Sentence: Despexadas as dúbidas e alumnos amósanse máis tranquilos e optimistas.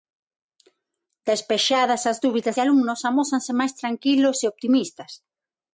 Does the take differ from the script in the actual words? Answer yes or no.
no